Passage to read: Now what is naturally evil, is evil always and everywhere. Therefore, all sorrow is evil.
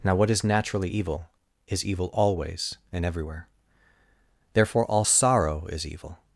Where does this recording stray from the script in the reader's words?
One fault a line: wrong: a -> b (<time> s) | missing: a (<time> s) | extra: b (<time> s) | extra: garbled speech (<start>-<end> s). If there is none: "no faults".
no faults